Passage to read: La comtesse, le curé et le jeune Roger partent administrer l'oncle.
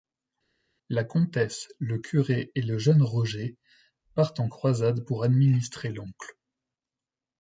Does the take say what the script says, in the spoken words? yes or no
no